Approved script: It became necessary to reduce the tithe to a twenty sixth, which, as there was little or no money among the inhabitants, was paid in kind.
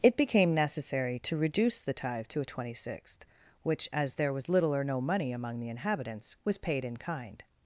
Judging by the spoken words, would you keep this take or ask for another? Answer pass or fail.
pass